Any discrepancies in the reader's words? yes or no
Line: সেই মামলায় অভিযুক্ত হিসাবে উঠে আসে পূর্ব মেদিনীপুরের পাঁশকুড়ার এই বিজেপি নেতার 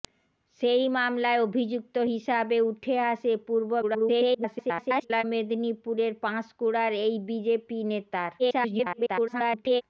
yes